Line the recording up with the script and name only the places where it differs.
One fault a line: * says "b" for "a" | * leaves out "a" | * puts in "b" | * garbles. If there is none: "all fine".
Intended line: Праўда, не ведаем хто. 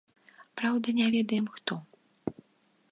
all fine